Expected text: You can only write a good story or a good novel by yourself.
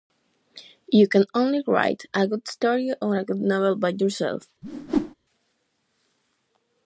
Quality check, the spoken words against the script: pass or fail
pass